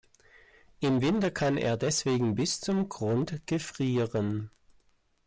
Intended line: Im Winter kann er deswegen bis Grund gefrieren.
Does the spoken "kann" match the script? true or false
true